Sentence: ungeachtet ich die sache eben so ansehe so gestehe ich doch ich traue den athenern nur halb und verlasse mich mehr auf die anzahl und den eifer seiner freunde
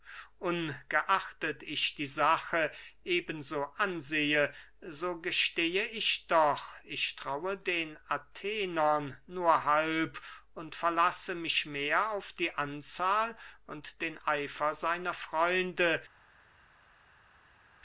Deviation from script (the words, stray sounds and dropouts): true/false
false